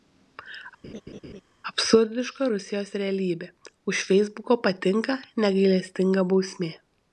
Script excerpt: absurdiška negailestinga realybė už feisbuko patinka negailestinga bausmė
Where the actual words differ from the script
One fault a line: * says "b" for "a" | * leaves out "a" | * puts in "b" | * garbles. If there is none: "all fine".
* says "rusijos" for "negailestinga"